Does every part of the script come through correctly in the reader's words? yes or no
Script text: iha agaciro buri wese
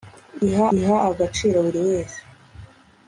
no